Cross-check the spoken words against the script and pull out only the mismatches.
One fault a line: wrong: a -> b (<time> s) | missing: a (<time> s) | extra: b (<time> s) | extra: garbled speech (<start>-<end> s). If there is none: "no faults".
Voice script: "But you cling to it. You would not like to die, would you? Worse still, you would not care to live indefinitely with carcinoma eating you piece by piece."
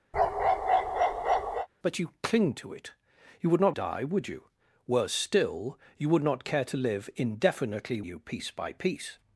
missing: like to (3.8 s)
missing: with carcinoma eating (8.0 s)